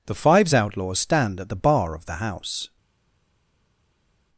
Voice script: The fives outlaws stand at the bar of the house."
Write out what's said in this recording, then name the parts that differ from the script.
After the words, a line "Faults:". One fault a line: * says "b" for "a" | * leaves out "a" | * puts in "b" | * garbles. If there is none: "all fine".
The fives outlaws stand at the bar of the house."
Faults:
all fine